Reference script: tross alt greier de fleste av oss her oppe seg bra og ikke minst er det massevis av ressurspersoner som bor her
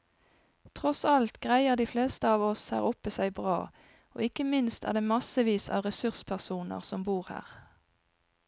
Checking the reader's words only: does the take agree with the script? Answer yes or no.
yes